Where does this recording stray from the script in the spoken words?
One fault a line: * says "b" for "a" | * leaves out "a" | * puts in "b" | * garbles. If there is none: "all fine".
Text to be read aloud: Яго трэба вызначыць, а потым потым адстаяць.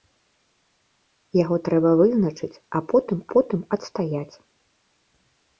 all fine